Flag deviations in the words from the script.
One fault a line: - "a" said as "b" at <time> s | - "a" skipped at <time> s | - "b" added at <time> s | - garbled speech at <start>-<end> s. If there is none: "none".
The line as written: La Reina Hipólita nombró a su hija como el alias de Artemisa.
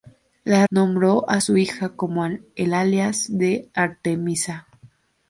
- "Reina Hipólita" skipped at 0.7 s